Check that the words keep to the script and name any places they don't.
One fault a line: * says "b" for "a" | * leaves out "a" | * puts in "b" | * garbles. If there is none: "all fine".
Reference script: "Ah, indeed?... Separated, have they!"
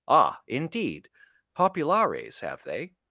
* says "Populares" for "Separated"